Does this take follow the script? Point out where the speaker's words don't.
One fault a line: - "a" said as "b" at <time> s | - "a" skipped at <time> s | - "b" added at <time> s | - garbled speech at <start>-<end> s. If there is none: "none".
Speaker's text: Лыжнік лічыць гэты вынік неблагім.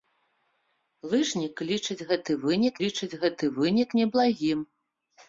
- "лічыць гэты вынік" added at 2.8 s